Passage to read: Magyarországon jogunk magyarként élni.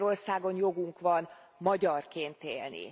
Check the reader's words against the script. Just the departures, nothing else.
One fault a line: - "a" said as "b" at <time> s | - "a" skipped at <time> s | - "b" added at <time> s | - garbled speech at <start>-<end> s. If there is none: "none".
- "van" added at 1.0 s